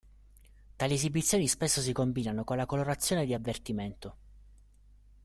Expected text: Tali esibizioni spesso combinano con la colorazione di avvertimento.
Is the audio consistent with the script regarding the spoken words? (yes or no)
no